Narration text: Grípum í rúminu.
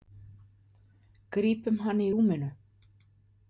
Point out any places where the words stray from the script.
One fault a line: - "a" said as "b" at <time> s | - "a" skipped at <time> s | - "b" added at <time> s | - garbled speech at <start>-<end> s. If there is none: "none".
- "hann" added at 1.9 s